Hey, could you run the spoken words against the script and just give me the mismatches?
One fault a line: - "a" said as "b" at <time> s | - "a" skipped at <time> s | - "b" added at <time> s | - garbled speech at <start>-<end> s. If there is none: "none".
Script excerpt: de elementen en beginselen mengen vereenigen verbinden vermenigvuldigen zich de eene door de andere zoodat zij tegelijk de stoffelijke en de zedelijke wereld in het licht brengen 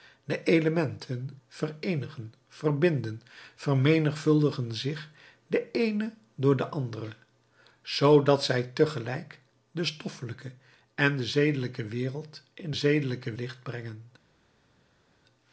- "en beginselen mengen" skipped at 1.3 s
- "het" said as "zedelijke" at 12.7 s